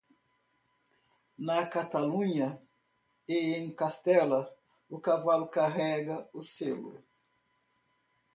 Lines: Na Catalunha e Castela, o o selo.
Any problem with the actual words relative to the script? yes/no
yes